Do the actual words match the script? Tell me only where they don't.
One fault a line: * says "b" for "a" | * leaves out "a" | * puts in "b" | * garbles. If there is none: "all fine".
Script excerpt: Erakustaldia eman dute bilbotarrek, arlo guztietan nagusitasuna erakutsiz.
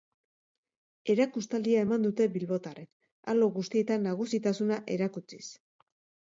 all fine